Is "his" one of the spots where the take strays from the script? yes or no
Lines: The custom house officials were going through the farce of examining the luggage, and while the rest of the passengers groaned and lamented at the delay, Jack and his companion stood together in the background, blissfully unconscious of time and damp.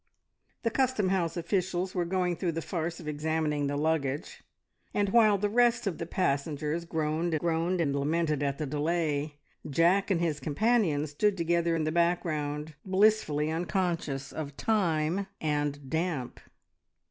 no